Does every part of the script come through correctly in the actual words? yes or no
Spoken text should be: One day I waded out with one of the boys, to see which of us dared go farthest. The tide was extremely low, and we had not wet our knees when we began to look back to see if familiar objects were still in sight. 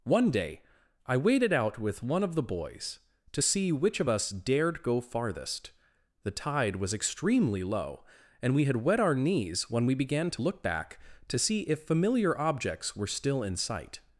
no